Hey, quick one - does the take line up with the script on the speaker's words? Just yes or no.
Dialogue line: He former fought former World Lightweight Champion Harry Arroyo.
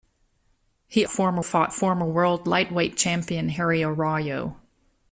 yes